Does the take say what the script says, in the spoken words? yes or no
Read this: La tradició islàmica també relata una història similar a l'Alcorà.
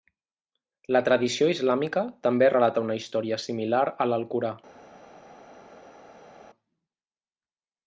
yes